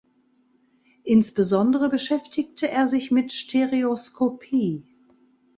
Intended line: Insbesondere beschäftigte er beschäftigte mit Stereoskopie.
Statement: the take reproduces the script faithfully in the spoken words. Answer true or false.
false